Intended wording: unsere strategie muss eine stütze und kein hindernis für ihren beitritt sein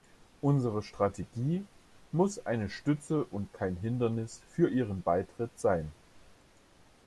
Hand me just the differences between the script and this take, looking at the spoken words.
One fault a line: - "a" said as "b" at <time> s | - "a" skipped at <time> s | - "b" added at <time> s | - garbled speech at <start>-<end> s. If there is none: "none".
none